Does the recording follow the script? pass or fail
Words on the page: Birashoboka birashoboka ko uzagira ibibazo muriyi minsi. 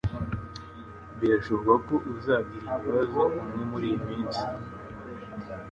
fail